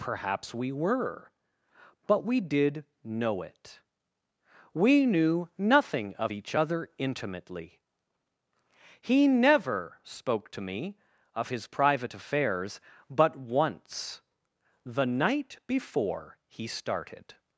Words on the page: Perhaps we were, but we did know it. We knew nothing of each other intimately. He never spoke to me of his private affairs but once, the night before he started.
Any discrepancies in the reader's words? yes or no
no